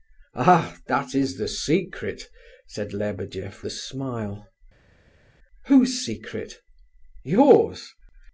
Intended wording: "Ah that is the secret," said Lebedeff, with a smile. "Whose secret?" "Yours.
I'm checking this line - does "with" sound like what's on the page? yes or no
no